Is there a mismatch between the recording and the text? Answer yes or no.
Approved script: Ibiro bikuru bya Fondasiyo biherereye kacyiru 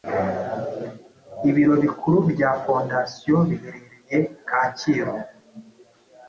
no